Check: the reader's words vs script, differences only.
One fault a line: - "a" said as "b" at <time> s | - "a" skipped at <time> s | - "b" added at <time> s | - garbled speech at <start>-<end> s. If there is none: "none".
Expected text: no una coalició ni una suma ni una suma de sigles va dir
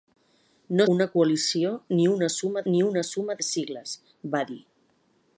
none